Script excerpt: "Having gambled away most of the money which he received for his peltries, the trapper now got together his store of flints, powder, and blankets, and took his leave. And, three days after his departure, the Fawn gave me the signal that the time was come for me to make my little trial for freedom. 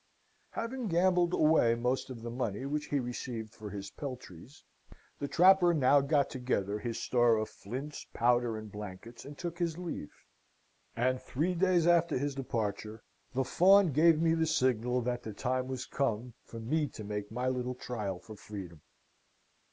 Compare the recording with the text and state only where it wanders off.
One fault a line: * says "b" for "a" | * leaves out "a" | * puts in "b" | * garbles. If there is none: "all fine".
all fine